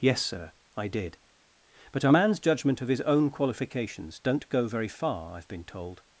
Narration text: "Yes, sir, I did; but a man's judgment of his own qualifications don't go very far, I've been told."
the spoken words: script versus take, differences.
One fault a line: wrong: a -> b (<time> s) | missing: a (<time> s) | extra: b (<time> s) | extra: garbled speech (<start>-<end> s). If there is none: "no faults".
no faults